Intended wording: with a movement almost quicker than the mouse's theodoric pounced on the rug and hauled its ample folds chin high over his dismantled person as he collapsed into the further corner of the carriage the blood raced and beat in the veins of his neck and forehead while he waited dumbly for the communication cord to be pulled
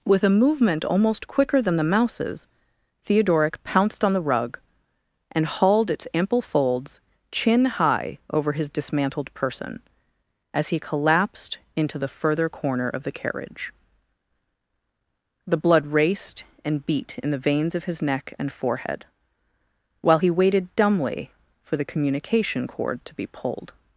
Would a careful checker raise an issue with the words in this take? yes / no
no